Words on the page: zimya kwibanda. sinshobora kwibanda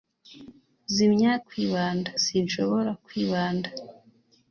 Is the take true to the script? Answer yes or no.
yes